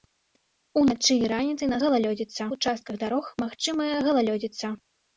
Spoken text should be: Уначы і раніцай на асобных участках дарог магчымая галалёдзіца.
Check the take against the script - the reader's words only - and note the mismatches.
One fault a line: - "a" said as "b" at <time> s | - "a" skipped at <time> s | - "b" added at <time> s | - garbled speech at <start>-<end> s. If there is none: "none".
- "асобных" said as "галалёдзіца" at 1.8 s